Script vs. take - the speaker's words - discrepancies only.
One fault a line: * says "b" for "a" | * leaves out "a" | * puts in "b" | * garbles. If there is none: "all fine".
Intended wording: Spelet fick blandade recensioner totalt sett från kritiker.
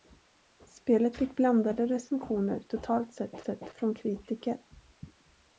* puts in "sett"